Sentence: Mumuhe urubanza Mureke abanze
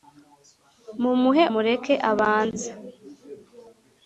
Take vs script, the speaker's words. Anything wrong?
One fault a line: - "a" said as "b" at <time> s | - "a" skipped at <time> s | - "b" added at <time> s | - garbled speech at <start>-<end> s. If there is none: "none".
- "urubanza" skipped at 1.4 s